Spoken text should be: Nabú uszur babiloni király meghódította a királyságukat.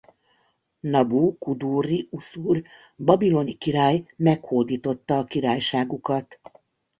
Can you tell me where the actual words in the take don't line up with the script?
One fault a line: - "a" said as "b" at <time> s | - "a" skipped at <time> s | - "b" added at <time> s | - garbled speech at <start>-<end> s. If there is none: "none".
- "kudurri" added at 1.4 s